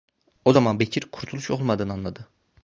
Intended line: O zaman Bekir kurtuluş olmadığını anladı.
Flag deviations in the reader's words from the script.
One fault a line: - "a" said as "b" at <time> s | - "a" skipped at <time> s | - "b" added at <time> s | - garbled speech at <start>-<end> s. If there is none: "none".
none